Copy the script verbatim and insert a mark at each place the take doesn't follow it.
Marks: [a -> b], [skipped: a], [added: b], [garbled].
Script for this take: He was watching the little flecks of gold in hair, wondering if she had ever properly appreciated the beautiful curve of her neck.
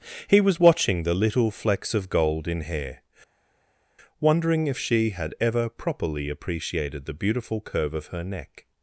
He was watching the little flecks of gold in hair, wondering if she had ever properly appreciated the beautiful curve of her neck.